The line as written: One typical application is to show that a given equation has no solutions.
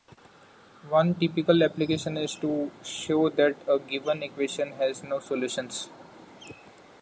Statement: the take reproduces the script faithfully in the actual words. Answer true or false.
true